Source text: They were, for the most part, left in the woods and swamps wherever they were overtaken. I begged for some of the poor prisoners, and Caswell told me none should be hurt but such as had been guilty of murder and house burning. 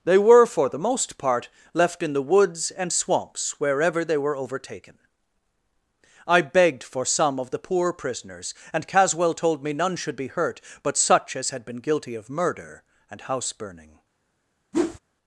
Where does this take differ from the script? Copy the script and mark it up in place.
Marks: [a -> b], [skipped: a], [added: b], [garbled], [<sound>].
They were, for the most part, left in the woods and swamps wherever they were overtaken. I begged for some of the poor prisoners, and Caswell told me none should be hurt but such as had been guilty of murder and house burning. [whoosh]